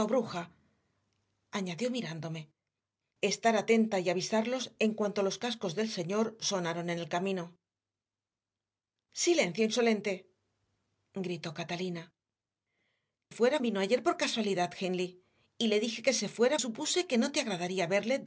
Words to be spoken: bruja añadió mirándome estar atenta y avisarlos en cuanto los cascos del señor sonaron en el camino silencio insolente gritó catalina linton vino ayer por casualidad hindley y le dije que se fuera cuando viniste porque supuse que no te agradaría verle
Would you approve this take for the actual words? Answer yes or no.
no